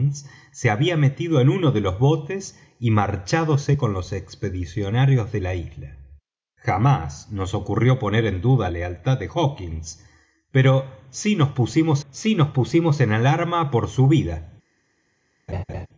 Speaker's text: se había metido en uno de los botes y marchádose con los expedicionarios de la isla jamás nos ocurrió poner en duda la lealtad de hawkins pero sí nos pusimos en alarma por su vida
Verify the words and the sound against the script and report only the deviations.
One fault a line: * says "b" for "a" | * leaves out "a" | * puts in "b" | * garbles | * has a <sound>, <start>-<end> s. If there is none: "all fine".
* leaves out "la"
* puts in "sí nos pusimos"
* has a laugh, 15.5-15.9 s